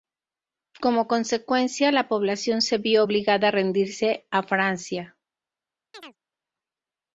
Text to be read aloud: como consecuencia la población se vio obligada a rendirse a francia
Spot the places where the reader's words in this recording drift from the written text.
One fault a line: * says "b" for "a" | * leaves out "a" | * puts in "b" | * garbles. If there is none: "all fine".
all fine